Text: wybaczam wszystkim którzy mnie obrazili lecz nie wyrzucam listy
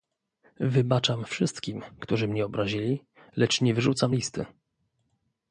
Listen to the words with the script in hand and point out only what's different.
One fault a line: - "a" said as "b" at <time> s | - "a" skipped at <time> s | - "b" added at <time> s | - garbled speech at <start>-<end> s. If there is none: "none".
none